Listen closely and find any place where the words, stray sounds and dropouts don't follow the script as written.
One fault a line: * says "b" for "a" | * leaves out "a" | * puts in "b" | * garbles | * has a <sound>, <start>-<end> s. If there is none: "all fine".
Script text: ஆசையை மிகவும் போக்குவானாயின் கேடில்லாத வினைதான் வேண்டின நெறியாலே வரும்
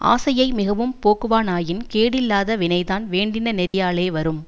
* has a dropout, 3.7-3.7 s